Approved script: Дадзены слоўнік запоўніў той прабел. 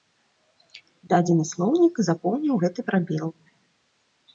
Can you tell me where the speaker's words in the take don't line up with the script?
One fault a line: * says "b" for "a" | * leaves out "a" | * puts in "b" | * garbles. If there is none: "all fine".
* says "гэты" for "той"